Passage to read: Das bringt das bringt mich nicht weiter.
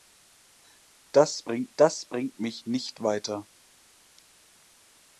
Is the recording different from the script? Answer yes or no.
no